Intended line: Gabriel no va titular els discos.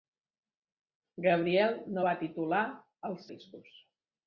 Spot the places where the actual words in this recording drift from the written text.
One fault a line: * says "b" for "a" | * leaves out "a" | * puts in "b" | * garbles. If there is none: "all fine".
all fine